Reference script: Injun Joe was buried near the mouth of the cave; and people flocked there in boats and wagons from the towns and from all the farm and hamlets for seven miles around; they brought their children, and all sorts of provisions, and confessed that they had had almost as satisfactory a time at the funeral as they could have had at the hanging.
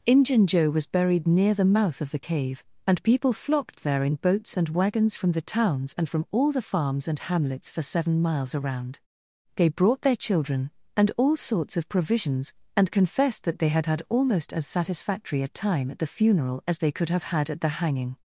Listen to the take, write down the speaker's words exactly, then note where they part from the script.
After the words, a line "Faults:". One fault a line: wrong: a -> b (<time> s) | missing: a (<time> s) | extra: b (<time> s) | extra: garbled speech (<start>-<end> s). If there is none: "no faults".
Injun Joe was buried near the mouth of the cave; and people flocked there in boats and wagons from the towns and from all the farms and hamlets for seven miles around; they brought their children, and all sorts of provisions, and confessed that they had had almost as satisfactory a time at the funeral as they could have had at the hanging.
Faults:
wrong: farm -> farms (6.6 s)